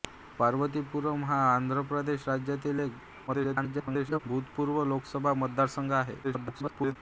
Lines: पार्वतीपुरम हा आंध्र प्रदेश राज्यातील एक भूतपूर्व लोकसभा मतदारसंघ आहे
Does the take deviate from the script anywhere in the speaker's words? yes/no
yes